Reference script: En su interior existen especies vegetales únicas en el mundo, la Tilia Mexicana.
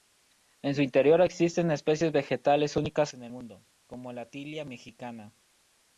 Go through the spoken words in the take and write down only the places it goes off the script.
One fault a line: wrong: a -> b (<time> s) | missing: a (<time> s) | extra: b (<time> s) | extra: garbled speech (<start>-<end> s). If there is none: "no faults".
extra: como (3.9 s)